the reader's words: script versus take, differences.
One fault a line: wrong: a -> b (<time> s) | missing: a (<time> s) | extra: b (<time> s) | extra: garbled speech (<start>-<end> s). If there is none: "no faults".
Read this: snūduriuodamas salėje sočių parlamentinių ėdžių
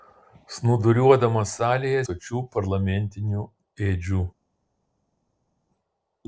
no faults